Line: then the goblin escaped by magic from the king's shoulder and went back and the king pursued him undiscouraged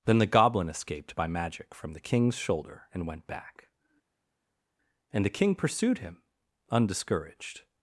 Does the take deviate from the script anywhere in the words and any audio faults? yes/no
no